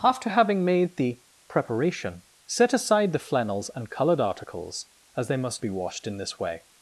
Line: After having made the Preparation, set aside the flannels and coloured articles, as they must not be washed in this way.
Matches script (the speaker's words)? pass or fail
fail